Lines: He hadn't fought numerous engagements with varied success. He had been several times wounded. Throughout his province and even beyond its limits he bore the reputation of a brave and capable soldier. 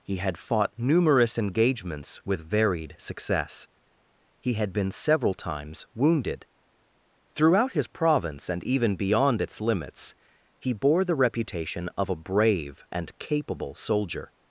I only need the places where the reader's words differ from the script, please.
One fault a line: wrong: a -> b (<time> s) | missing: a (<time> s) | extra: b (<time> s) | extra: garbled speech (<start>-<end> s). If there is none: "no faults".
wrong: hadn't -> had (0.2 s)